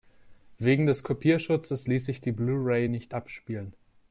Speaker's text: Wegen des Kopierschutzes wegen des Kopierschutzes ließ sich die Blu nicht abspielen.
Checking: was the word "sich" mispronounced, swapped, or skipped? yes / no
no